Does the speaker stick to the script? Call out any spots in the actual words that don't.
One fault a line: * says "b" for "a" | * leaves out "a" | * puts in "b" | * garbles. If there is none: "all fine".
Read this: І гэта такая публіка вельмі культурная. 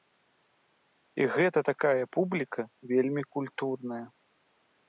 all fine